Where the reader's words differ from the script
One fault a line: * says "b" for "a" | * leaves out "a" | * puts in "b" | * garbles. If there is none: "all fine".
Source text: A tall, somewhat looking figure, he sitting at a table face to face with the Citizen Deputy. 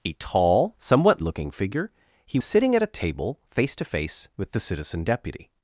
all fine